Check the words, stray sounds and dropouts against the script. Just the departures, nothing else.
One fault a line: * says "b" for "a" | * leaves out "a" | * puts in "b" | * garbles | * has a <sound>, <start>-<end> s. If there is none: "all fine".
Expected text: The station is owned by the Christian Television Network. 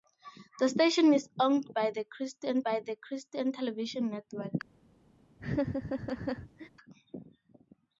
* puts in "by the Christian"
* has a laugh, 5.4-6.7 s